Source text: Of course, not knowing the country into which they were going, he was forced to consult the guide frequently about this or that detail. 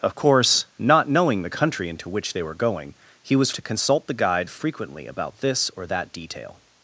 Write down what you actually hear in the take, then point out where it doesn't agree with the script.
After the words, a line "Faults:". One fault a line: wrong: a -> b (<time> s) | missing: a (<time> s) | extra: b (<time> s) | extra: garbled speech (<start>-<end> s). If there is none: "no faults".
Of course, not knowing the country into which they were going, he was to consult the guide frequently about this or that detail.
Faults:
missing: forced (3.5 s)